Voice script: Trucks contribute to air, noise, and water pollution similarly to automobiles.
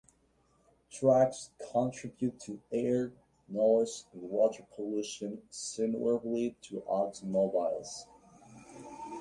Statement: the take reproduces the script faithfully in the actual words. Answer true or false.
true